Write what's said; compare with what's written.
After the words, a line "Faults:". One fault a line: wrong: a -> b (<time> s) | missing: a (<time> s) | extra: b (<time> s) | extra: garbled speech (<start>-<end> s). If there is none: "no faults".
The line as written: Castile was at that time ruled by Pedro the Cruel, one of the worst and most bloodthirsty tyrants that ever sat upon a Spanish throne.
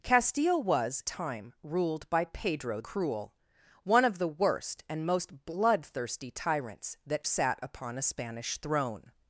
Castile was time ruled by Pedro Cruel, one of the worst and most bloodthirsty tyrants that sat upon a Spanish throne.
Faults:
missing: at that (1.0 s)
missing: the (2.8 s)
missing: ever (7.2 s)